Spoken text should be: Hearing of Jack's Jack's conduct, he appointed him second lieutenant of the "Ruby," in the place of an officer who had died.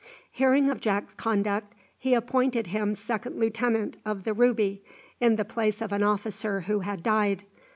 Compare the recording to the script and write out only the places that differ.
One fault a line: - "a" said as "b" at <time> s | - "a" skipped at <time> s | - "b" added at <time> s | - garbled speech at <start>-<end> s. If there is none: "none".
- "Jack's" skipped at 1.1 s